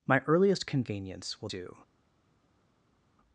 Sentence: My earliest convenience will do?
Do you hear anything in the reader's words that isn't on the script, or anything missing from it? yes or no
no